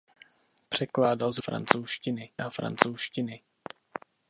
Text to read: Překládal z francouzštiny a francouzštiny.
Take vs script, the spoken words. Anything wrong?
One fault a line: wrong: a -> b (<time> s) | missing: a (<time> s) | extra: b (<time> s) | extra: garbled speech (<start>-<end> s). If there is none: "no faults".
no faults